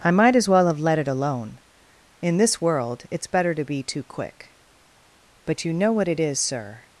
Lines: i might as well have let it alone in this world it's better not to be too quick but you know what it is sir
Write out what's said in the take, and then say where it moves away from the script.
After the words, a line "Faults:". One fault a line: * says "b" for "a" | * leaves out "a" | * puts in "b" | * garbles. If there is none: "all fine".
i might as well have let it alone in this world it's better to be too quick but you know what it is sir
Faults:
* leaves out "not"